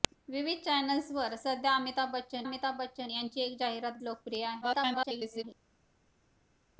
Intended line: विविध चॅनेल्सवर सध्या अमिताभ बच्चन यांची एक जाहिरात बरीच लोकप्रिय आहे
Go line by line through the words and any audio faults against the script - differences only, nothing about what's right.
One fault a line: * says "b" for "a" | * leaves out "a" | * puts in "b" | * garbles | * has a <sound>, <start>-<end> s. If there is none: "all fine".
* puts in "अमिताभ बच्चन"
* leaves out "बरीच"
* garbles